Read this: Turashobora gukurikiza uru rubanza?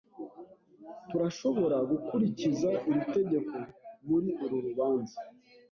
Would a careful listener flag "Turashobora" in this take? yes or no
no